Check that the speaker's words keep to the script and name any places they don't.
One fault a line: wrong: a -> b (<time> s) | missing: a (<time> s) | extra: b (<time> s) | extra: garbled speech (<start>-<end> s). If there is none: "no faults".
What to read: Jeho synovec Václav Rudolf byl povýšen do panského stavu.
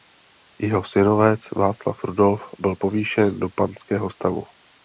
no faults